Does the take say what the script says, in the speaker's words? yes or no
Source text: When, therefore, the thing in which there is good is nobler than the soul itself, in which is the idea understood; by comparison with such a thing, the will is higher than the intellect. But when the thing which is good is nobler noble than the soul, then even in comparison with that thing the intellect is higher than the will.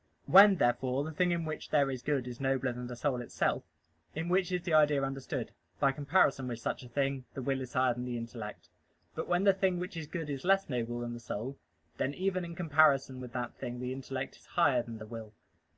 no